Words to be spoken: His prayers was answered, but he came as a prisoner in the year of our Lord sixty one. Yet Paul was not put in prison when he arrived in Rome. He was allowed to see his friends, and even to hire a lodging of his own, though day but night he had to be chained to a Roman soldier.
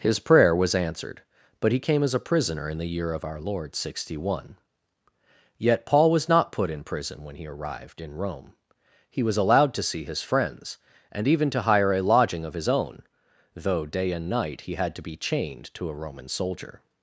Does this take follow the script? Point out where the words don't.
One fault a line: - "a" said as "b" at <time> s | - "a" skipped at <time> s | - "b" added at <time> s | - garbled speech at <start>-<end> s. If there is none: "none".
- "prayers" said as "prayer" at 0.2 s
- "but" said as "and" at 14.1 s